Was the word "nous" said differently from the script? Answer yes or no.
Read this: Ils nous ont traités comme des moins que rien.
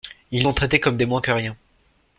yes